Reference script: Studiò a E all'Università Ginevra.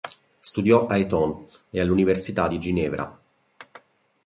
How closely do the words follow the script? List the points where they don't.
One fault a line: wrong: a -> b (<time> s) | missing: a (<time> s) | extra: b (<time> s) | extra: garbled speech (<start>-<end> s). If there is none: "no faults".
extra: Eton (1.0 s)
extra: di (2.5 s)